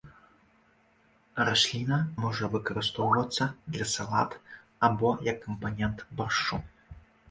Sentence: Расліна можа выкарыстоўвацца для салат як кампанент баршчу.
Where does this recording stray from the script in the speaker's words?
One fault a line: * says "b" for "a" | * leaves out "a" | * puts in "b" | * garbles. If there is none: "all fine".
* puts in "або"